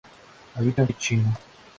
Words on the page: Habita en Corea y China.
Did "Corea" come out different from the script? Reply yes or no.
yes